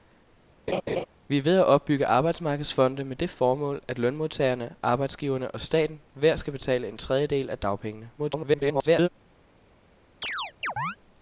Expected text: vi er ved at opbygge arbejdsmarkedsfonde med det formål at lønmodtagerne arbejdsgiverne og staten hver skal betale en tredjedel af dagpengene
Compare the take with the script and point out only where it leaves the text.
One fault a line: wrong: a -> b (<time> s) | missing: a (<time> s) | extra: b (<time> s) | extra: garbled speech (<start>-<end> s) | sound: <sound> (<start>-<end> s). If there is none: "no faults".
sound: laugh (0.7-1.1 s)
extra: garbled speech (8.2-9.1 s)
sound: chirp (10.2-11.0 s)